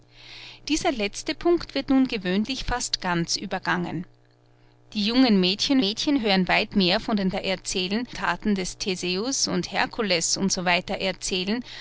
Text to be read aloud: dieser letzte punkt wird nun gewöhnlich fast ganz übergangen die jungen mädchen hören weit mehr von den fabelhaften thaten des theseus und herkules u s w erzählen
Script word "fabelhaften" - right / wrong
wrong